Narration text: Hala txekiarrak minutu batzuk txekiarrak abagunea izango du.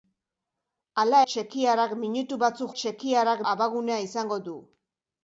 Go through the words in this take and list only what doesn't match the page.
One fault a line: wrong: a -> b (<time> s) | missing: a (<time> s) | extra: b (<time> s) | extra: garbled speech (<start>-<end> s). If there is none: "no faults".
no faults